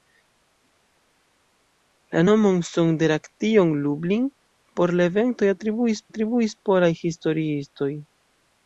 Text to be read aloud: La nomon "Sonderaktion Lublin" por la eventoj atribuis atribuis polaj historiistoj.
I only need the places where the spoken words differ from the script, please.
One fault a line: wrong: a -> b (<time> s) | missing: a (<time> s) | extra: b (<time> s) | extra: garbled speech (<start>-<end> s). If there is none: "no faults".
no faults